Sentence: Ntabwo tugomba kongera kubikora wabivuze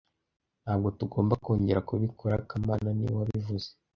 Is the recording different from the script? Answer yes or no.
yes